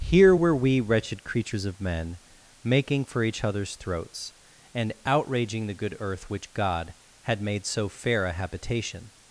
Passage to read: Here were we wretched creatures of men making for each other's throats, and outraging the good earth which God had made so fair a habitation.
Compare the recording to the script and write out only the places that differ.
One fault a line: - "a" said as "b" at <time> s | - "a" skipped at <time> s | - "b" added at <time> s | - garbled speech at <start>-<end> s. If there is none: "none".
none